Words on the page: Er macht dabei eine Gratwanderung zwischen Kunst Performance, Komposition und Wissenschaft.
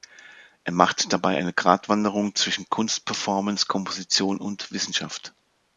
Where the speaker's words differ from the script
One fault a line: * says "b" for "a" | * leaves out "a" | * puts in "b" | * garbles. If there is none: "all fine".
all fine